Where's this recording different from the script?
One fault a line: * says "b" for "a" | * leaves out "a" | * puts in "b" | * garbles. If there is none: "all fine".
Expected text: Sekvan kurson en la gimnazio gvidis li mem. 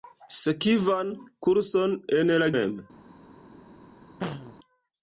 * leaves out "gimnazio gvidis li"